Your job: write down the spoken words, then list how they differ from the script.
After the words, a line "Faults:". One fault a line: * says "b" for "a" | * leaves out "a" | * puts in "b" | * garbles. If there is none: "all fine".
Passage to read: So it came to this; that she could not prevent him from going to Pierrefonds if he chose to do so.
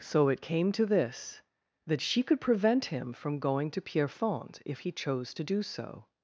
So it came to this; that she could prevent him from going to Pierrefonds if he chose to do so.
Faults:
* leaves out "not"